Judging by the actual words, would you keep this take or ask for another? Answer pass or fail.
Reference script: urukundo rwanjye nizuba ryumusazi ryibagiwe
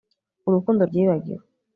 fail